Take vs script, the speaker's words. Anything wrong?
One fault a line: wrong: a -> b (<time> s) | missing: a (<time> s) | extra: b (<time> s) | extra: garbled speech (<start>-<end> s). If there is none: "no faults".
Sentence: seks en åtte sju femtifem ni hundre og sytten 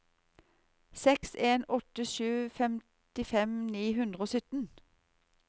no faults